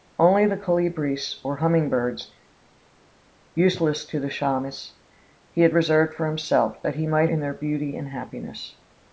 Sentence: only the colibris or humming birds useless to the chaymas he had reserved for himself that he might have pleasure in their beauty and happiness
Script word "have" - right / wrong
wrong